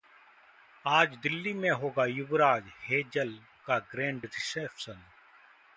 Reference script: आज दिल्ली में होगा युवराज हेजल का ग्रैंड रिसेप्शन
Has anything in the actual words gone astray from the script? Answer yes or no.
no